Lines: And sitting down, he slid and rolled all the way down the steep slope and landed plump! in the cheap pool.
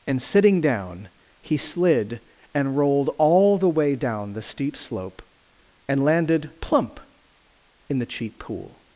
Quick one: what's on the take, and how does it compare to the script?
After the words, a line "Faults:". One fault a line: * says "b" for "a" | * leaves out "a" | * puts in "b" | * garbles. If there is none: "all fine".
And sitting down, he slid and rolled all the way down the steep slope and landed plump! in the cheap pool.
Faults:
all fine